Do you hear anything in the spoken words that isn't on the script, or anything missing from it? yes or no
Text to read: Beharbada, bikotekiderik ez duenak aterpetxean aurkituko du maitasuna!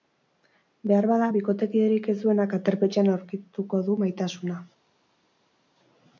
no